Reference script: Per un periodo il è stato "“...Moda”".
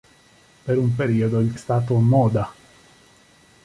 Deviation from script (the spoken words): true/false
false